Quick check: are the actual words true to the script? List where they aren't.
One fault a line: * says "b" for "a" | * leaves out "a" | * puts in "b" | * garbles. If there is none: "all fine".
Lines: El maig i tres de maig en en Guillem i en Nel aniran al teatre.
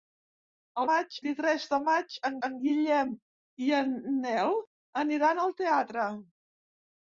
all fine